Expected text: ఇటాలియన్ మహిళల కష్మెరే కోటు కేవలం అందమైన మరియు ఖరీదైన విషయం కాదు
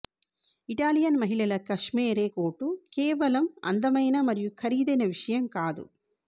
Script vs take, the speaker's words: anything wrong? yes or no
no